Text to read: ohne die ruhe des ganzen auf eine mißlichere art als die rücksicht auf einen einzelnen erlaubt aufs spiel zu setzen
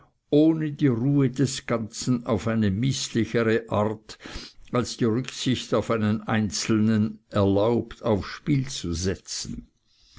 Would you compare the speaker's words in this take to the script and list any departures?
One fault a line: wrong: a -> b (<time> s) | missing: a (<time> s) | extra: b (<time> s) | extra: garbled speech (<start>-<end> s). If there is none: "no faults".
no faults